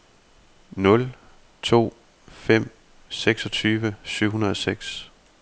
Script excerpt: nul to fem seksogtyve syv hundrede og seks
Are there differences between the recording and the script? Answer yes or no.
no